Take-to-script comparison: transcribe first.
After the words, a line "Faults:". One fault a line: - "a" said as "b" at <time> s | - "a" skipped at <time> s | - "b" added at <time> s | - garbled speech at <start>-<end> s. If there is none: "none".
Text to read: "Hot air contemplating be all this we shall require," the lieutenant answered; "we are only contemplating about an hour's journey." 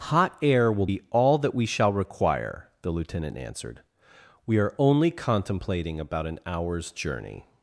"Hot air will be all that we shall require," the lieutenant answered; "we are only contemplating about an hour's journey."
Faults:
- "contemplating" said as "will" at 0.7 s
- "this" said as "that" at 1.4 s